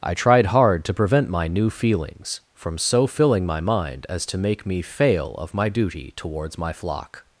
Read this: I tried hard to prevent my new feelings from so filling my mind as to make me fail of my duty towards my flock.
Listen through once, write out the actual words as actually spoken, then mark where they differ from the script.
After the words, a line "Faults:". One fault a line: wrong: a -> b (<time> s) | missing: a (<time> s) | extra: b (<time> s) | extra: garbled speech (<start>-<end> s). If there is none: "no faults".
I tried hard to prevent my new feelings from so filling my mind as to make me fail of my duty towards my flock.
Faults:
no faults